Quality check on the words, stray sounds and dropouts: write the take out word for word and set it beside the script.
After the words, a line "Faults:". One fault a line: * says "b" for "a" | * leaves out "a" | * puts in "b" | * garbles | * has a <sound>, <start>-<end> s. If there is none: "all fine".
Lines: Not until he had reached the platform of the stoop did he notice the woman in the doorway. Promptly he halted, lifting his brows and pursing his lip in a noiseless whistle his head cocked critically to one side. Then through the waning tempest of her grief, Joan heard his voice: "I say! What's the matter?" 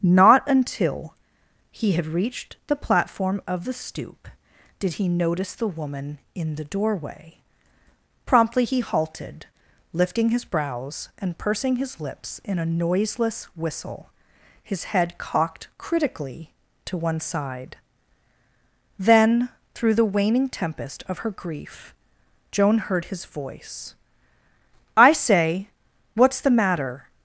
Not until he had reached the platform of the stoop did he notice the woman in the doorway. Promptly he halted, lifting his brows and pursing his lips in a noiseless whistle his head cocked critically to one side. Then through the waning tempest of her grief, Joan heard his voice: "I say! What's the matter?"
Faults:
* says "lips" for "lip"